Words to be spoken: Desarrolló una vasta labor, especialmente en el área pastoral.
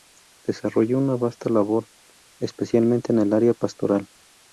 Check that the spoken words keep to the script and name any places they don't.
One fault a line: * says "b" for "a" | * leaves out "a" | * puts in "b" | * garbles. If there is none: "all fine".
all fine